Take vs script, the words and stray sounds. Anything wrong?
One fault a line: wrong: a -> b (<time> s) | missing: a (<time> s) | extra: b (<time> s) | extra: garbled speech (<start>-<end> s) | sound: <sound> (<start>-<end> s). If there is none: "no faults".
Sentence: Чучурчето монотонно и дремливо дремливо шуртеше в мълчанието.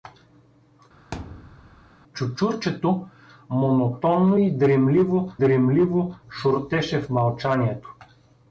sound: thud (1.1-1.9 s)